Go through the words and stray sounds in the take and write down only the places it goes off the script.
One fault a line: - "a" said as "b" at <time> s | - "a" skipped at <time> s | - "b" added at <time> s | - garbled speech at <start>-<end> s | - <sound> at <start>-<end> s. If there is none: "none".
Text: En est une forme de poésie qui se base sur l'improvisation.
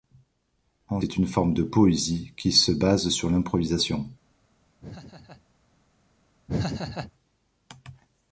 - laugh at 4.8-5.4 s
- laugh at 6.5-7.1 s